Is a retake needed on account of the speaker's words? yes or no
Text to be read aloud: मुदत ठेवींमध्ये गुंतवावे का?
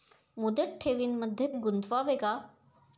no